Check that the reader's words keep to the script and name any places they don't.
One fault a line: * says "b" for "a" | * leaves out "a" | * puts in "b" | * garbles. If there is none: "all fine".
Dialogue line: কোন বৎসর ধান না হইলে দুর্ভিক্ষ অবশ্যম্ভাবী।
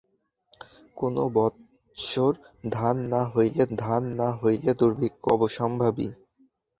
* puts in "ধান না হইলে"